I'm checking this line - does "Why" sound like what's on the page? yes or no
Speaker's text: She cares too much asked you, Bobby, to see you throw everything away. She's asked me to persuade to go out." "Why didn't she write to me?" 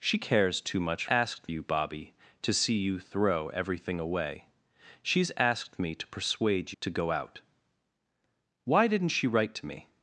yes